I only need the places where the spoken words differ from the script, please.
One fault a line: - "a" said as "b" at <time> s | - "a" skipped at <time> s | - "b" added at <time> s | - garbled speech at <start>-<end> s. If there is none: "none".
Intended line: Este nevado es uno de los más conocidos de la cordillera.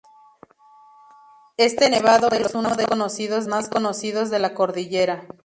- "los" said as "conocidos" at 2.9 s